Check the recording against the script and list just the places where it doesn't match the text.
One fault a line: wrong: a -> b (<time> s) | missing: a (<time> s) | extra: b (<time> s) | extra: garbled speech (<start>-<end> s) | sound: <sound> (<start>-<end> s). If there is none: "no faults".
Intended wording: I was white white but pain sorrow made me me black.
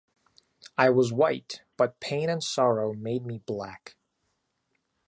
missing: white (1.6 s)
extra: and (2.3 s)
missing: me (3.4 s)